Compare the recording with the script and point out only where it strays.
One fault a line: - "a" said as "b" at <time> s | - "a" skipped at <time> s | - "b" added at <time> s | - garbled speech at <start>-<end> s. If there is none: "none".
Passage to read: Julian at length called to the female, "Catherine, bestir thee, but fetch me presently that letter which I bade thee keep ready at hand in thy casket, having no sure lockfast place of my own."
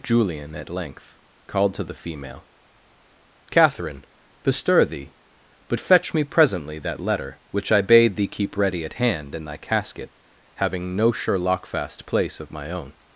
none